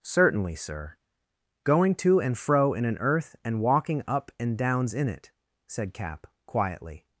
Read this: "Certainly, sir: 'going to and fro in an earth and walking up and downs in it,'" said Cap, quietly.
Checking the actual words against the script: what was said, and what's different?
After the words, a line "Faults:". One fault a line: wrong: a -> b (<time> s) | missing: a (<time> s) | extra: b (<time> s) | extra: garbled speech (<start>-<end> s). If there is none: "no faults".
"Certainly, sir: 'going to and fro in an earth and walking up and downs in it,'" said Cap, quietly.
Faults:
no faults